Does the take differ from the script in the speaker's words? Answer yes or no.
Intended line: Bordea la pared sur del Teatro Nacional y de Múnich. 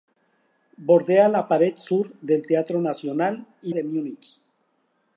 no